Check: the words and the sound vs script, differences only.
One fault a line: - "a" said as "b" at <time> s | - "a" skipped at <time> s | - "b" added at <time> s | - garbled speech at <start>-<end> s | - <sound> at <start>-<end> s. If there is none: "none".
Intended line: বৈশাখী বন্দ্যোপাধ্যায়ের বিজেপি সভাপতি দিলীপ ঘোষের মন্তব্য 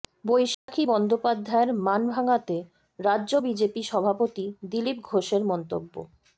- dropout at 0.5-0.7 s
- "মান ভাঙাতে রাজ্য" added at 1.8 s